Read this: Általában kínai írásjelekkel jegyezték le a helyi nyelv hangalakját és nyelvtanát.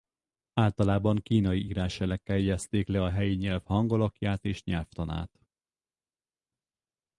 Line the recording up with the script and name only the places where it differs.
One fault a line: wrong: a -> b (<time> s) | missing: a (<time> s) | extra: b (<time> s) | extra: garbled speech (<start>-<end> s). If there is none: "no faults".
no faults